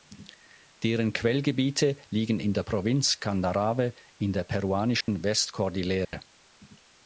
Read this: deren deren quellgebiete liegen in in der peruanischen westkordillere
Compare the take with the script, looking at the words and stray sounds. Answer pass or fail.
fail